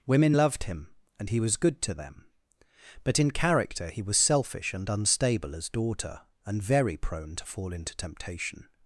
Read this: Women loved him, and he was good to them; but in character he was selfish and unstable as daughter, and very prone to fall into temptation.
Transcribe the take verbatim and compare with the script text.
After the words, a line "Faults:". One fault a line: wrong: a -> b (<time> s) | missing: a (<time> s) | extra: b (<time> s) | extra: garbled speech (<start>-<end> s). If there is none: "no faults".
Women loved him, and he was good to them; but in character he was selfish and unstable as daughter, and very prone to fall into temptation.
Faults:
no faults